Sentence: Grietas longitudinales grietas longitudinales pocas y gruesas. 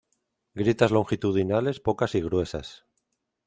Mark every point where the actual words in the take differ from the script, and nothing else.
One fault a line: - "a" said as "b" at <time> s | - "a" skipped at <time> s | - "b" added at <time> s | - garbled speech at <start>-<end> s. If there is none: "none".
- "grietas longitudinales" skipped at 1.8 s